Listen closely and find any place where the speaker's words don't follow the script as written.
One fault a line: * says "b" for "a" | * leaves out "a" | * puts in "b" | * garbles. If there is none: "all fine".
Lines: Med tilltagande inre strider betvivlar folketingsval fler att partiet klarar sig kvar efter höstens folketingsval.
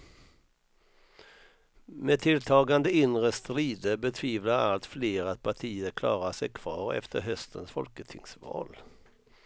* says "allt" for "folketingsval"